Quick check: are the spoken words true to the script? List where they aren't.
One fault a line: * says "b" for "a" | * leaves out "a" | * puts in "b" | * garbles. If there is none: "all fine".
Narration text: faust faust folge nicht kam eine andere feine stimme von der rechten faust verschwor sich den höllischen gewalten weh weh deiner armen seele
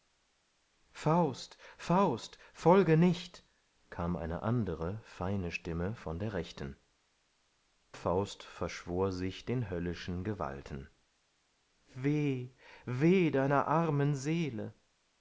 all fine